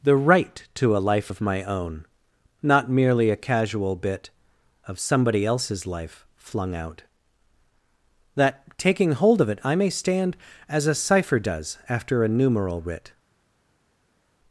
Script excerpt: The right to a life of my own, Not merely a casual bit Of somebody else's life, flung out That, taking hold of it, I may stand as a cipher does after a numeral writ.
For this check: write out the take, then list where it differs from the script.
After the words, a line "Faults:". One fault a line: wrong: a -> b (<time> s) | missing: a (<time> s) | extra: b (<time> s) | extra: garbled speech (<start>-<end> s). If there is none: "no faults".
The right to a life of my own, Not merely a casual bit Of somebody else's life, flung out That, taking hold of it, I may stand as a cipher does after a numeral writ.
Faults:
no faults